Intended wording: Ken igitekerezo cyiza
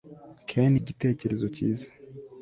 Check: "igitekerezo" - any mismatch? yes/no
no